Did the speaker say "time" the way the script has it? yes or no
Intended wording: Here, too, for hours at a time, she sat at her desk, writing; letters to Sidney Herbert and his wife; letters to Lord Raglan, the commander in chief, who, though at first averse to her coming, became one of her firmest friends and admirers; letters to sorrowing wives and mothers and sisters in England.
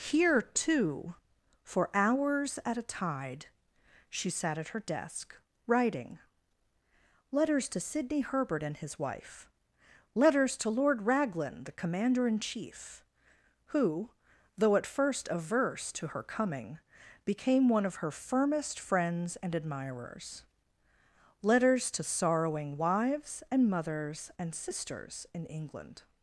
no